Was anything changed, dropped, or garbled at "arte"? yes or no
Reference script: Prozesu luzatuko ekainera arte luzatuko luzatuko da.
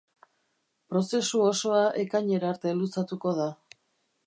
no